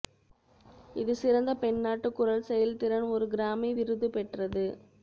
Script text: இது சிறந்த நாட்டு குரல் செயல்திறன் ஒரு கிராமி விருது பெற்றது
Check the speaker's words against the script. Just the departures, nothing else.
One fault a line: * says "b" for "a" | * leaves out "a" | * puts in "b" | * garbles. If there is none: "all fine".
* puts in "பெண்"